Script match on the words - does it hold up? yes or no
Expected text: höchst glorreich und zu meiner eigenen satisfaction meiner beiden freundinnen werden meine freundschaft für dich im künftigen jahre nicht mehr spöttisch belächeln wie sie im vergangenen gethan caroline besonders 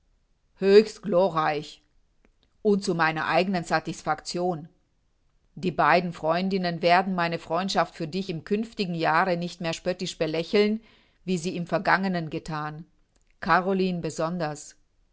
no